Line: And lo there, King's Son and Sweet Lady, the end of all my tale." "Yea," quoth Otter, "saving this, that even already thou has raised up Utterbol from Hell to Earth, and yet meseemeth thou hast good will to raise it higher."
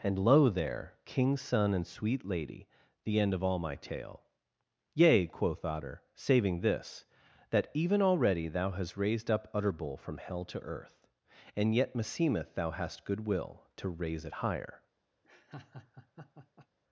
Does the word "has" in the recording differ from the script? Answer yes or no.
yes